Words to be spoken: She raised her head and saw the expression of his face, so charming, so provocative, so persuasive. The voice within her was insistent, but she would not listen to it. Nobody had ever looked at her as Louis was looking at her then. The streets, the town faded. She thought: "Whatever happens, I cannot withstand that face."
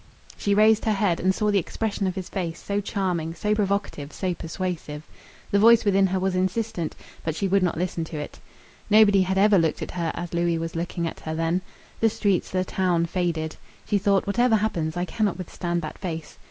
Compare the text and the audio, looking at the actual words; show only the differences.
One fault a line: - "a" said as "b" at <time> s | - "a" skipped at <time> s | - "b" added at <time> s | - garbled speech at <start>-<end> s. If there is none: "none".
none